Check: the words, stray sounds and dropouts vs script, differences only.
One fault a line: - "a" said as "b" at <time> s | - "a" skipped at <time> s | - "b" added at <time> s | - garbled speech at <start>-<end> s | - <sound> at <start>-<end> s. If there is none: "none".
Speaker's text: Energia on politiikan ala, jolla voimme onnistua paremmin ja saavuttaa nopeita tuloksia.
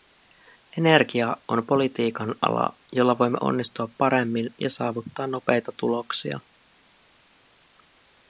none